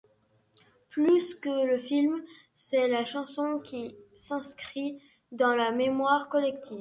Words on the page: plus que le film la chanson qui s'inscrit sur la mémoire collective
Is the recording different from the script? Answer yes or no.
yes